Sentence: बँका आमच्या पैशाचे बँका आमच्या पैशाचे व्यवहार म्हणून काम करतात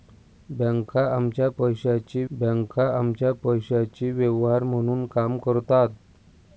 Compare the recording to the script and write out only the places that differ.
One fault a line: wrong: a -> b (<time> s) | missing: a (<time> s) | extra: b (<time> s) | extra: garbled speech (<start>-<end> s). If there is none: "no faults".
no faults